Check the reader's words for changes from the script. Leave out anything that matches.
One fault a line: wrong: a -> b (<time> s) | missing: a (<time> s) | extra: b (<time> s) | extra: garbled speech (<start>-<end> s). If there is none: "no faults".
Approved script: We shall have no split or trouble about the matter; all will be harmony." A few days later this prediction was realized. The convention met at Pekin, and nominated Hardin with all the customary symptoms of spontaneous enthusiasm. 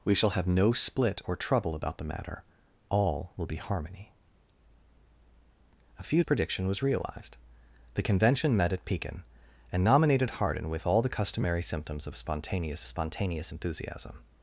missing: days later this (6.2 s)
extra: spontaneous (12.9 s)